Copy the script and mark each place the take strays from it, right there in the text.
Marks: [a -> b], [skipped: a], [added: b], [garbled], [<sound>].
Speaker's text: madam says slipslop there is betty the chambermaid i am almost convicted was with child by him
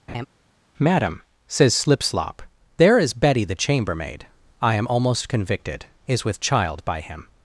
[laugh] madam says slipslop there is betty the chambermaid i am almost convicted [was -> is] with child by him